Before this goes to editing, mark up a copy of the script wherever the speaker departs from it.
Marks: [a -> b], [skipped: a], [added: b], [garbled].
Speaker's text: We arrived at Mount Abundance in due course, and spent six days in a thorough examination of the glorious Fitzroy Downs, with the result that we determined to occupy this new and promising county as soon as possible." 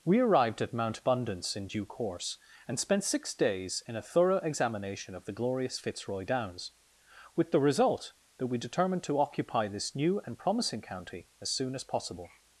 We arrived at Mount Abundance in due course, and spent six days in a thorough examination of the glorious Fitzroy Downs, with the result that we determined to occupy this new and promising county as soon as possible."